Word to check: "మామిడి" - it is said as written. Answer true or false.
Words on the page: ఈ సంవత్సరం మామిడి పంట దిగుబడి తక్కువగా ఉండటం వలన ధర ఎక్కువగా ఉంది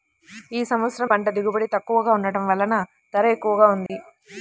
false